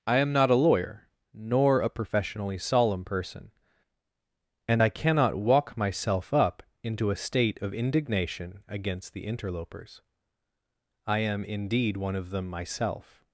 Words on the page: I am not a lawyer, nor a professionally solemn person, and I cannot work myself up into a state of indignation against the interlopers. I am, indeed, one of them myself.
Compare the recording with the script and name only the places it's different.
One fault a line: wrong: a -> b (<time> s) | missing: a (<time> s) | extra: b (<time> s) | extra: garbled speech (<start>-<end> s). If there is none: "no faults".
wrong: work -> walk (5.4 s)